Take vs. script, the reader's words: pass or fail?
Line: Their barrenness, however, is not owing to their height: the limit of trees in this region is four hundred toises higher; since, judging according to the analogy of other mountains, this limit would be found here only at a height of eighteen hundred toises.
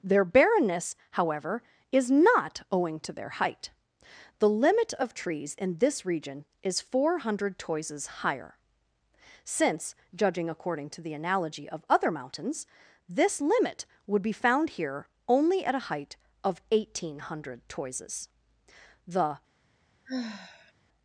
fail